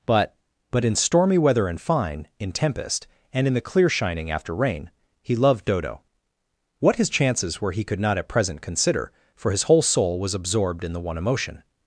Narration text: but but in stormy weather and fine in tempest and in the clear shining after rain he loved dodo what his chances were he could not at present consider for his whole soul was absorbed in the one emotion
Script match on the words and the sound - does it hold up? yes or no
yes